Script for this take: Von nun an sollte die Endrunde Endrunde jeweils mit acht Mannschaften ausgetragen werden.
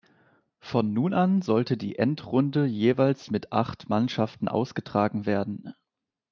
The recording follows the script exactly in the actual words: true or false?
false